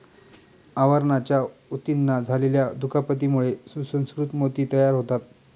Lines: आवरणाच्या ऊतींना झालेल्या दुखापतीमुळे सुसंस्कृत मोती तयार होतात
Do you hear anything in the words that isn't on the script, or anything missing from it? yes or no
no